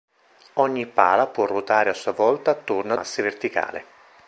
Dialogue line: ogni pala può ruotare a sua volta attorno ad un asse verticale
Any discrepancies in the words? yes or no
yes